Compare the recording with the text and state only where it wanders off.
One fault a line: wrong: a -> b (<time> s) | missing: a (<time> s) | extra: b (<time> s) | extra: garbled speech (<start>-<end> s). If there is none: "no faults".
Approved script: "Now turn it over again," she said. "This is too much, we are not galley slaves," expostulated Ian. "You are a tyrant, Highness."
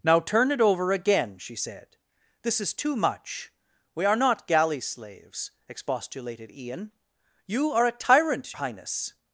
no faults